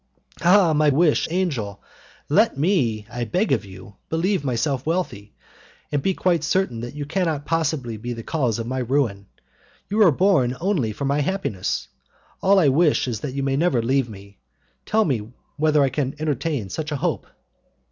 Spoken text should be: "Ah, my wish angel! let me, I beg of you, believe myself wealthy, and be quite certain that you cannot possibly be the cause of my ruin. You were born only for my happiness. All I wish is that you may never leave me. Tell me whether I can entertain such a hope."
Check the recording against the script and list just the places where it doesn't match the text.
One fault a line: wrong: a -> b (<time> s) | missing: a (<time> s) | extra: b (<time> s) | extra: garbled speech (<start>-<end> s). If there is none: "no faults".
no faults